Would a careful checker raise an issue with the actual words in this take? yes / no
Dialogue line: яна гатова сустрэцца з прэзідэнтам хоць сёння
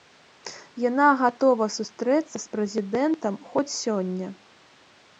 no